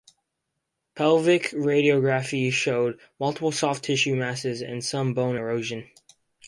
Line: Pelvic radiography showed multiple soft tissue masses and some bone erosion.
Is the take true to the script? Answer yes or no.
yes